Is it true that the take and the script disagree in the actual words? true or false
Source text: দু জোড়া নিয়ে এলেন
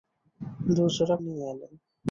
false